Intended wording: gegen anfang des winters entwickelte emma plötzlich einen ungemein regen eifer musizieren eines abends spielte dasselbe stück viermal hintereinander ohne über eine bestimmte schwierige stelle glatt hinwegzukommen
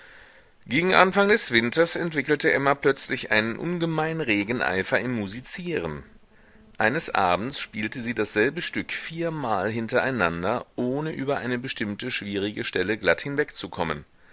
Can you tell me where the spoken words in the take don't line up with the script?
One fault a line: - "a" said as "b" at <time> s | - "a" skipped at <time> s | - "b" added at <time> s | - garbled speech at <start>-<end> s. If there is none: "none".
- "im" added at 5.0 s
- "sie" added at 8.0 s